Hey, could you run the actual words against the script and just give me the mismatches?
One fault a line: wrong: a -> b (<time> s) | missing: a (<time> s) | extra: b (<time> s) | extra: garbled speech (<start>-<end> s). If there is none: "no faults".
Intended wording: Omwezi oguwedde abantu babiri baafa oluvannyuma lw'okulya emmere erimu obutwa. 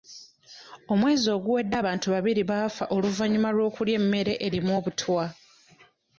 no faults